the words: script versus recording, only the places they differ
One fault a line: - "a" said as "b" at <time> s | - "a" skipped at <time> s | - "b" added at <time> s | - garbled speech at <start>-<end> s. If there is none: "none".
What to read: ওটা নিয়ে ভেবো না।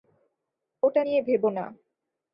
none